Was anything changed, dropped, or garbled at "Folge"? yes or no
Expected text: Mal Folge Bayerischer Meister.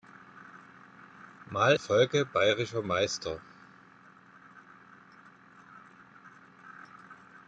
no